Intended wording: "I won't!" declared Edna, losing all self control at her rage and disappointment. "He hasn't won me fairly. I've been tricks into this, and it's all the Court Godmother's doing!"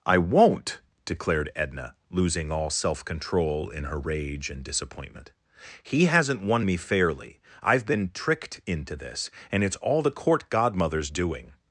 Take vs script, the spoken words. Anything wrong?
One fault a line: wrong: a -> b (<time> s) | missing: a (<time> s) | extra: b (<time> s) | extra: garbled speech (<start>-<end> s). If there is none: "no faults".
wrong: at -> in (3.7 s)
wrong: tricks -> tricked (8.1 s)